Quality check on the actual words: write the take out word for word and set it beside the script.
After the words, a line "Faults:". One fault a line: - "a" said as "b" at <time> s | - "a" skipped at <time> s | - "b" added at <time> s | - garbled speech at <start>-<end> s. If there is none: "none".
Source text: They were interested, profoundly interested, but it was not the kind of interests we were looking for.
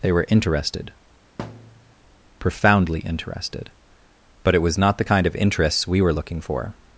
They were interested, profoundly interested, but it was not the kind of interests we were looking for.
Faults:
none